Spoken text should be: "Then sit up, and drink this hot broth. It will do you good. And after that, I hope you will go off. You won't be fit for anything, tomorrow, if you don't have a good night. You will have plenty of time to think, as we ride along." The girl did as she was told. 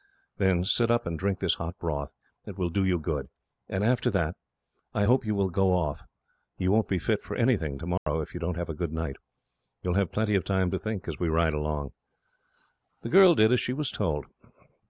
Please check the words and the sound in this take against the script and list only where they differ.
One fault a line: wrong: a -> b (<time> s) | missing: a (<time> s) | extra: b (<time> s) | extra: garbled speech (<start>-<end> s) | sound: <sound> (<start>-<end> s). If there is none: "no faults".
sound: dropout (8.0-8.1 s)